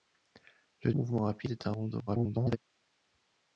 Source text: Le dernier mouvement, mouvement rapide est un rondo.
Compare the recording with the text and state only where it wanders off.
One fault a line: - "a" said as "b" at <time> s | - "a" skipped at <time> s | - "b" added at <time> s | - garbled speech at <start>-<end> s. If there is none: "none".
- "dernier mouvement" skipped at 0.9 s
- garbled speech at 2.1-2.6 s